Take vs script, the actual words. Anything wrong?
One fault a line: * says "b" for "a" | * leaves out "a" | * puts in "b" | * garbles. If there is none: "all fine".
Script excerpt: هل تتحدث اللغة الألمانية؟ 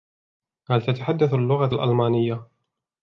all fine